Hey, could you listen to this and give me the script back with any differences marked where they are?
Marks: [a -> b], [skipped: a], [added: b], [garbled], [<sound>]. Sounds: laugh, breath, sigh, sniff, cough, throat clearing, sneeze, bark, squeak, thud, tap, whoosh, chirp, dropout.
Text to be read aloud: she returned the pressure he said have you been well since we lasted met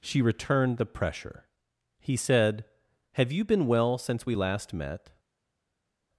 she returned the pressure he said have you been well since we [lasted -> last] met